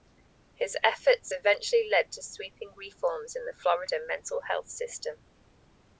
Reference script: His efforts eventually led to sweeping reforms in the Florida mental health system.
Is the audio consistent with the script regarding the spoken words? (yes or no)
yes